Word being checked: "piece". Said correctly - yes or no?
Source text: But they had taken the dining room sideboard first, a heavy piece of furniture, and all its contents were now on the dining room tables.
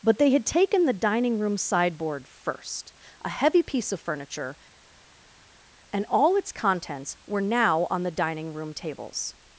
yes